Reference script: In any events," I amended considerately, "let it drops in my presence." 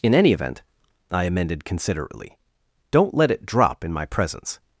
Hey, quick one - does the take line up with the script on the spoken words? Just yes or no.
no